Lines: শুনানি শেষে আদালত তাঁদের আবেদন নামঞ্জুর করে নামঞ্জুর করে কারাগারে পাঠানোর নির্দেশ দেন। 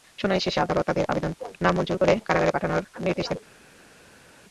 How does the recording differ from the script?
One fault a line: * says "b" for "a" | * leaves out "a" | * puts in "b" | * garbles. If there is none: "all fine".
* leaves out "নামঞ্জুর করে"